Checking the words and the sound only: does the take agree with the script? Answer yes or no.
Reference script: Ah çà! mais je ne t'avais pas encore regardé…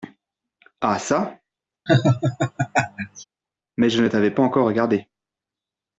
no